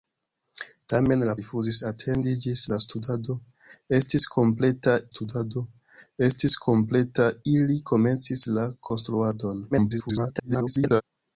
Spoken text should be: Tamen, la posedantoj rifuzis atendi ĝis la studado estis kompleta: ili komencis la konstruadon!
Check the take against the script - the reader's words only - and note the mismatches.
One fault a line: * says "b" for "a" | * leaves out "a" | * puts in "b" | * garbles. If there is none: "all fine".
* leaves out "posedantoj"
* puts in "studado estis kompleta"
* garbles